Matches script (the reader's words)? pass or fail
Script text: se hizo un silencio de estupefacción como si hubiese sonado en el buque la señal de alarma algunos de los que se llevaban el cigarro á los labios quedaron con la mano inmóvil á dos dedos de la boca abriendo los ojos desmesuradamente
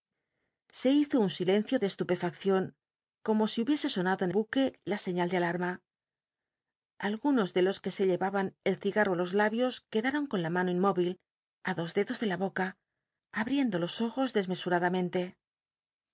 fail